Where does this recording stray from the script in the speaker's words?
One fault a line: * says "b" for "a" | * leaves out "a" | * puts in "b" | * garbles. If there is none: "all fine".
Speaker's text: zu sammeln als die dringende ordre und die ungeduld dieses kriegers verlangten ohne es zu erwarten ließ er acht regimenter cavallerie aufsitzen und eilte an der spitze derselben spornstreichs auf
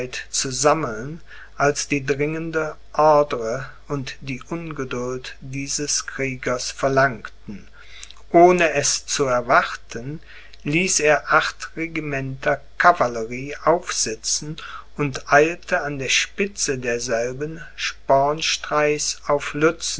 all fine